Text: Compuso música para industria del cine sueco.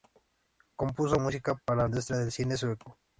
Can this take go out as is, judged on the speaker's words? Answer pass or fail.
pass